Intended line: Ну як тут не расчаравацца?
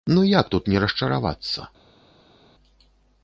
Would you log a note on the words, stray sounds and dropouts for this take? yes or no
no